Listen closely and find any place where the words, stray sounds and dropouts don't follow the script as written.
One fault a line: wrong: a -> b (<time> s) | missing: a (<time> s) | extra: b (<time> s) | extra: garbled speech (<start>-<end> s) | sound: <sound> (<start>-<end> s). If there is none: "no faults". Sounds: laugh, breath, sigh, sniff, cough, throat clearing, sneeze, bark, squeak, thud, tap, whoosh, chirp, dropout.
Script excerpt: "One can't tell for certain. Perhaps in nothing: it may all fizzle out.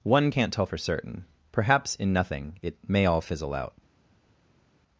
no faults